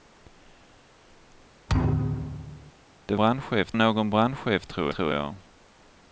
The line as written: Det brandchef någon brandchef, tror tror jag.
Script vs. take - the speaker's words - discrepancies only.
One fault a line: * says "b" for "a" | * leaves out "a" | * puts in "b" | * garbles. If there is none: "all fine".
all fine